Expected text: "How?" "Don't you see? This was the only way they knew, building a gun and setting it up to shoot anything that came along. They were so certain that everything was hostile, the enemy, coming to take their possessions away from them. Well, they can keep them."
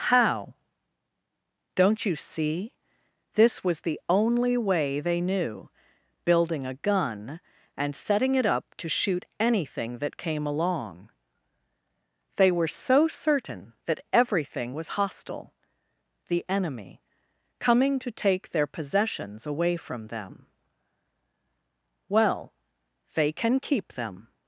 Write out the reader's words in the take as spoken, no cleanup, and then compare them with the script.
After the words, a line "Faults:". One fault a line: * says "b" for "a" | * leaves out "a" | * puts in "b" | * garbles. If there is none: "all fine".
"How?" "Don't you see? This was the only way they knew, building a gun and setting it up to shoot anything that came along. They were so certain that everything was hostile, the enemy, coming to take their possessions away from them. Well, they can keep them."
Faults:
all fine